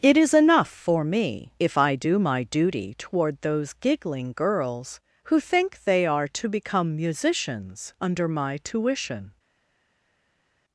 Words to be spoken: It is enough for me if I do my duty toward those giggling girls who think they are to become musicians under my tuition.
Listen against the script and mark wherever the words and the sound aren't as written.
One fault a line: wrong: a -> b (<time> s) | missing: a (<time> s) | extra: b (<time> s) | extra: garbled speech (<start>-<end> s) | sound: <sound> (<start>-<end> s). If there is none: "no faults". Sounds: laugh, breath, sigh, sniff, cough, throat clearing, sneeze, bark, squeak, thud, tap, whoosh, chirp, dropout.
no faults